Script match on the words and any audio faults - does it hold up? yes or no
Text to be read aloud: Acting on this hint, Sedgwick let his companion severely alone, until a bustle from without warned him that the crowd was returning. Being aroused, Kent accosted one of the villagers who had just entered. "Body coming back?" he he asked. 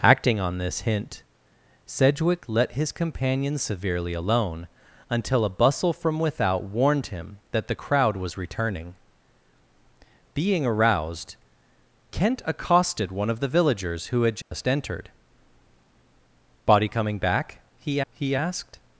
no